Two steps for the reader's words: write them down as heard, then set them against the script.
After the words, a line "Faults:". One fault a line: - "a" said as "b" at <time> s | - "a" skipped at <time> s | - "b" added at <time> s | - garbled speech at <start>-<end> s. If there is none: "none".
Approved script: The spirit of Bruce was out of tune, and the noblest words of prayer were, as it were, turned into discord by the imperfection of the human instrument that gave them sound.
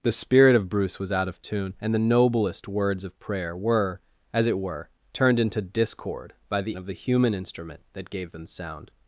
The spirit of Bruce was out of tune, and the noblest words of prayer were, as it were, turned into discord by the of the human instrument that gave them sound.
Faults:
- "imperfection" skipped at 6.8 s